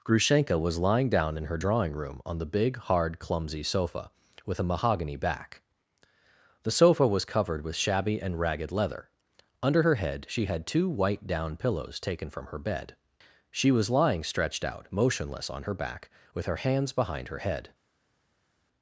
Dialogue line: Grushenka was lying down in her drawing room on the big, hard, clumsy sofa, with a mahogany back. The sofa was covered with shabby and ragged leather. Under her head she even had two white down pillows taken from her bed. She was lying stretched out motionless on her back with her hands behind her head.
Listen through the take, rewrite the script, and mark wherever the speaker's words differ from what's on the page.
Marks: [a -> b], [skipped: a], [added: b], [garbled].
Grushenka was lying down in her drawing room on the big, hard, clumsy sofa, with a mahogany back. The sofa was covered with shabby and ragged leather. Under her head she [skipped: even] had two white down pillows taken from her bed. She was lying stretched out motionless on her back with her hands behind her head.